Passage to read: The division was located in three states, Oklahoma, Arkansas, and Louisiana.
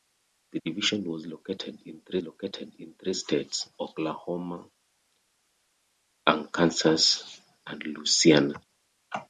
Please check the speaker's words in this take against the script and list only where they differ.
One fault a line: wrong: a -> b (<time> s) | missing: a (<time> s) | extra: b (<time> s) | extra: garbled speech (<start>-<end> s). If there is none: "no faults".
extra: located in three (2.2 s)